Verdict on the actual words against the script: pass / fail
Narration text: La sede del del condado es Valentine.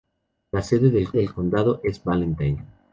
pass